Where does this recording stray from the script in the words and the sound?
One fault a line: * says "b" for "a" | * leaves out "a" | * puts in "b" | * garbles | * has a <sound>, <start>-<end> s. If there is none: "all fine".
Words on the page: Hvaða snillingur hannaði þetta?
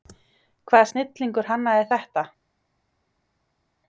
all fine